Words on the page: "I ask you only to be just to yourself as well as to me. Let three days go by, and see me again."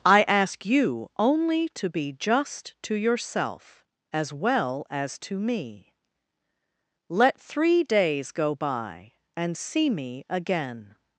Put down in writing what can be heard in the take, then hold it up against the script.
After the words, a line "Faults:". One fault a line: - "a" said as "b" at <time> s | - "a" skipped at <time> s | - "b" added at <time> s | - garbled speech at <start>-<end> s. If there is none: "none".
"I ask you only to be just to yourself as well as to me. Let three days go by, and see me again."
Faults:
none